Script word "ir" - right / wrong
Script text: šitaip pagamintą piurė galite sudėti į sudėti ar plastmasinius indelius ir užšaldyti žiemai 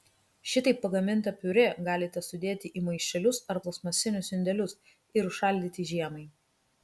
right